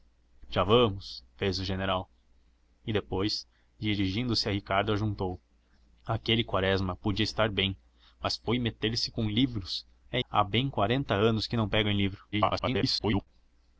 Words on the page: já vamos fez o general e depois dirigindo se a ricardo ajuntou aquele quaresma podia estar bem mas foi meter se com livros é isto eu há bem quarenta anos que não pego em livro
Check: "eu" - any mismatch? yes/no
yes